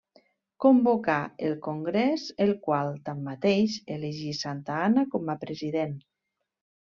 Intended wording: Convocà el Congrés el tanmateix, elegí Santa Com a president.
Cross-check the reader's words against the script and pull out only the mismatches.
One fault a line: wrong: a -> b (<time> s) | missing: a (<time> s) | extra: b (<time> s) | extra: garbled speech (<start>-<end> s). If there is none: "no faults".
extra: qual (2.6 s)
extra: Anna (4.9 s)